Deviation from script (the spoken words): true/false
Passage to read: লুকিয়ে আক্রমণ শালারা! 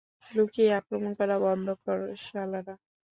true